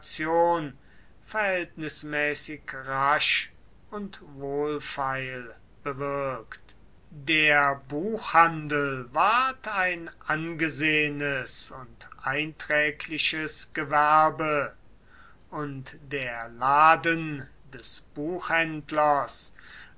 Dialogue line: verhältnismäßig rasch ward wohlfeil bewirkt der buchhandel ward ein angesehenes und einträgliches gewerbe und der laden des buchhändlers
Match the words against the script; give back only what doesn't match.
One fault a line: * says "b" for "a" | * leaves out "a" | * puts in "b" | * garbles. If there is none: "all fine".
* says "und" for "ward"